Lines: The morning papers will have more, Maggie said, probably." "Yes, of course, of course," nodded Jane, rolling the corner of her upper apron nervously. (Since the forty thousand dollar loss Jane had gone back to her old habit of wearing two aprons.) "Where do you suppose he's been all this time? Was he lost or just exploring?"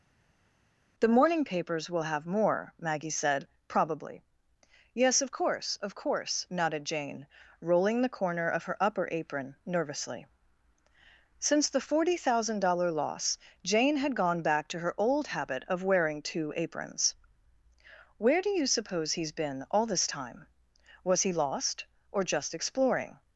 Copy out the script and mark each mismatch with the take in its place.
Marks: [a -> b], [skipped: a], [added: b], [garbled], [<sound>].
The morning papers will have more, Maggie said, probably." "Yes, of course, of course," nodded Jane, rolling the corner of her upper apron nervously. (Since the forty thousand dollar loss Jane had gone back to her old habit of wearing two aprons.) "Where do you suppose he's been all this time? Was he lost or just exploring?"